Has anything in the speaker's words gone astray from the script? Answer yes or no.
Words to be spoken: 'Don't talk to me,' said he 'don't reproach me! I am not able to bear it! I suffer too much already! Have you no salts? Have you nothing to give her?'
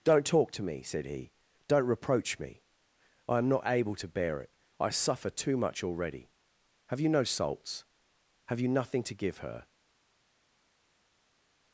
no